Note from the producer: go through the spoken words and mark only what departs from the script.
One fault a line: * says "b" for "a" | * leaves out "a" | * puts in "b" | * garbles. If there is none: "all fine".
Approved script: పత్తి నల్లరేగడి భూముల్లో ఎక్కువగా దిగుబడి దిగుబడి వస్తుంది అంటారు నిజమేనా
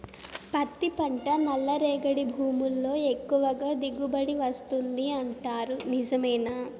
* puts in "పంట"
* leaves out "దిగుబడి"